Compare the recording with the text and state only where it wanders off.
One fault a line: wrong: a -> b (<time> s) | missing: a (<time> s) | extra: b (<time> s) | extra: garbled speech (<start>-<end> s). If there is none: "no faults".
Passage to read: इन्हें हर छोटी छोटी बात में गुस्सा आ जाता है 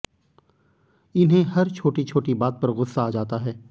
wrong: में -> पर (2.6 s)